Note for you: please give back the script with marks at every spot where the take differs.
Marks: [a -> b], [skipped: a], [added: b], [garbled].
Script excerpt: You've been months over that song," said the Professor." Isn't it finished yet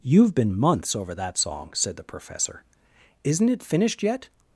You've been months over that song," said the Professor." Isn't it finished yet